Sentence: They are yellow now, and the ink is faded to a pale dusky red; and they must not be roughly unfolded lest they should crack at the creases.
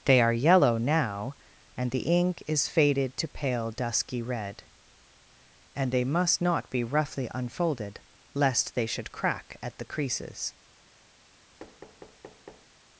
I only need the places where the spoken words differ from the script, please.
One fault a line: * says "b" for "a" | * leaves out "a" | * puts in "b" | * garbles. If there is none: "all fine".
* leaves out "a"